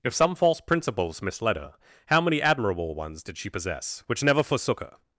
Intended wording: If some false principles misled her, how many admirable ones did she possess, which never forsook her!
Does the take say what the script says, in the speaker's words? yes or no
yes